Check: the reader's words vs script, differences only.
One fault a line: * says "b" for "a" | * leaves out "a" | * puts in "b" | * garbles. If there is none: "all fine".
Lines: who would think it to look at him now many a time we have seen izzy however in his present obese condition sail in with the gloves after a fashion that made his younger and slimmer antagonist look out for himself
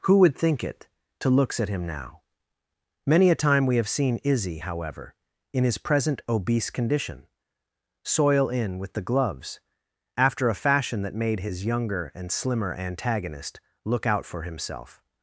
* says "looks" for "look"
* says "soil" for "sail"